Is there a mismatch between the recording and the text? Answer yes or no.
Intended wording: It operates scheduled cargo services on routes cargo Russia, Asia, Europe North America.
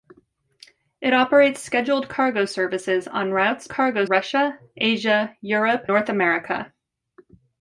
no